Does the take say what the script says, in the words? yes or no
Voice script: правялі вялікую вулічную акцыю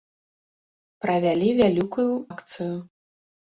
no